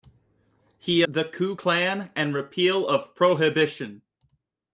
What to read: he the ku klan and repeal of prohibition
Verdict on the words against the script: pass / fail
pass